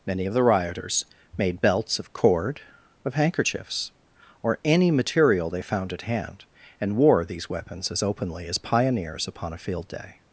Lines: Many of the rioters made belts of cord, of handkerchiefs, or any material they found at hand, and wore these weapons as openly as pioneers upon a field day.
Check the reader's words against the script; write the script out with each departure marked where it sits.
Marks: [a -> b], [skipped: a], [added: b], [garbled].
Many of the rioters made belts of cord, of handkerchiefs, or any material they found at hand, and wore these weapons as openly as pioneers upon a field day.